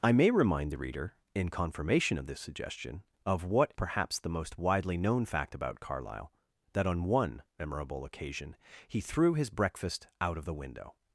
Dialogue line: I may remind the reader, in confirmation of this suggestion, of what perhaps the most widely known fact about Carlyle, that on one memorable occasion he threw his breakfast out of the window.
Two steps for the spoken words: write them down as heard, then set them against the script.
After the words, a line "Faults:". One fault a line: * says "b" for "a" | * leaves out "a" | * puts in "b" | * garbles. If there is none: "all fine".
I may remind the reader, in confirmation of this suggestion, of what perhaps the most widely known fact about Carlyle, that on one memorable occasion he threw his breakfast out of the window.
Faults:
all fine